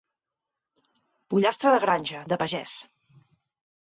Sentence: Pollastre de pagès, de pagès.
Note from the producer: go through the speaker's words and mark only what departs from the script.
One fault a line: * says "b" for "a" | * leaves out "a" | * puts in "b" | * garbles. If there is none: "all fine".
* says "granja" for "pagès"